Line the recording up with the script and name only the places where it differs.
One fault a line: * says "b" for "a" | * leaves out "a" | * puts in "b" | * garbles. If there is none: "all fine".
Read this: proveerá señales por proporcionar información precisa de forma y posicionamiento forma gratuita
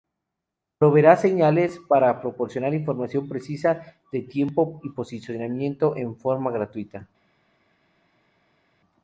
* says "para" for "por"
* says "tiempo" for "forma"
* puts in "en"